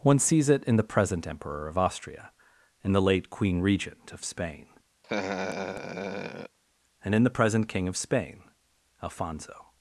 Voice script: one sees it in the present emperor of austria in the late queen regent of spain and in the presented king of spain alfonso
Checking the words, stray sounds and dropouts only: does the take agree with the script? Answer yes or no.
no